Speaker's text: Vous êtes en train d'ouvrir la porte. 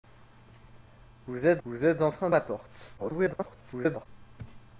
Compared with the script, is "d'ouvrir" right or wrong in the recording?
wrong